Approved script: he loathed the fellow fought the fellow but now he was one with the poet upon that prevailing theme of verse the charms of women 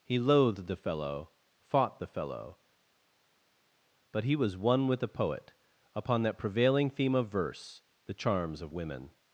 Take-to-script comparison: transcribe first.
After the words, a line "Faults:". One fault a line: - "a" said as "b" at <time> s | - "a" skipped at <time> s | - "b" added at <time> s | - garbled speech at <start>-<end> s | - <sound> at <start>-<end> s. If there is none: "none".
he loathed the fellow fought the fellow but he was one with the poet upon that prevailing theme of verse the charms of women
Faults:
- "now" skipped at 4.2 s